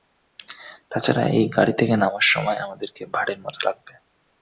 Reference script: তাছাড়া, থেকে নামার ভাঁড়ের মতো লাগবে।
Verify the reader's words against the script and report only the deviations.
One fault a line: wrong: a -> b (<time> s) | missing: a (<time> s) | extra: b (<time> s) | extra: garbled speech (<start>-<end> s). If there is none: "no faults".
extra: এই গাড়ি (1.3 s)
extra: সময় আমাদেরকে (2.3 s)